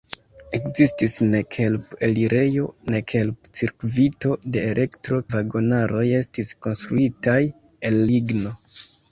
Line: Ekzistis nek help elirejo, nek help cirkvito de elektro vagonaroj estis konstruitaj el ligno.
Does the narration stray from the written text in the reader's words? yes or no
no